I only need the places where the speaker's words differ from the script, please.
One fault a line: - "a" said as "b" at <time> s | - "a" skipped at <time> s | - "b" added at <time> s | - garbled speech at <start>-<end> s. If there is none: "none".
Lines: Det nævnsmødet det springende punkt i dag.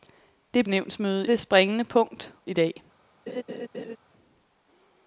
none